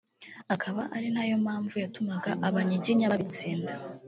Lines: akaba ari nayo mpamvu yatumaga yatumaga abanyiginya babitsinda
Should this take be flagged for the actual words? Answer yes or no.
yes